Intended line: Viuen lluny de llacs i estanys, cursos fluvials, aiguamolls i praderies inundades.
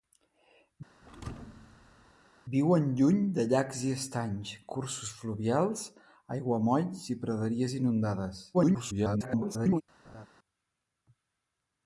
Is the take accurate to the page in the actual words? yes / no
no